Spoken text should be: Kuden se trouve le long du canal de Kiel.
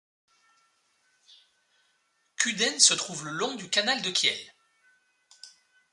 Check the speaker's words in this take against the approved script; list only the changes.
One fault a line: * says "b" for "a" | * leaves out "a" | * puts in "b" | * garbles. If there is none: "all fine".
all fine